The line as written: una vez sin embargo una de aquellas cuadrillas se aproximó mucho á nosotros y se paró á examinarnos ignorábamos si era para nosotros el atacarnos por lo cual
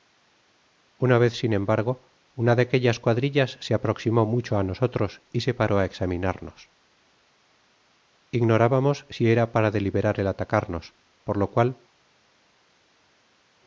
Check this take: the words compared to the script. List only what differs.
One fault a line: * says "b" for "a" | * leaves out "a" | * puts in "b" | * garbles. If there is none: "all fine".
* says "deliberar" for "nosotros"